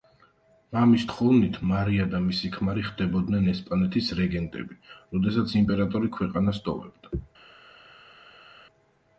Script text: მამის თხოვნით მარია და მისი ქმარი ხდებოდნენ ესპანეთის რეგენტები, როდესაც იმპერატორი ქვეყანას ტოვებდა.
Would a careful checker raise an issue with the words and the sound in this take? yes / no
no